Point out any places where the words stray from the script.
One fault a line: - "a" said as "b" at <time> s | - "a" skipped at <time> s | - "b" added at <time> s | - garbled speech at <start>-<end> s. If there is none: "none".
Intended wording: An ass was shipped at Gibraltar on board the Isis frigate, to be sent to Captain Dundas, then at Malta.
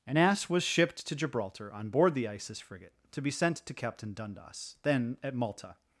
- "at" said as "to" at 1.1 s